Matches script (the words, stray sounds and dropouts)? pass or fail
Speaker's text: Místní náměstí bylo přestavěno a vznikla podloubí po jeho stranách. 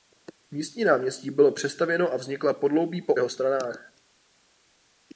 pass